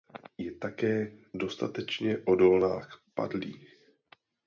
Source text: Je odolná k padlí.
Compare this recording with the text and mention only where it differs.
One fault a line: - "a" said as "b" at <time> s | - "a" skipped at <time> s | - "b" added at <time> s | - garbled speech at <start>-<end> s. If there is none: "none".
- "také dostatečně" added at 0.6 s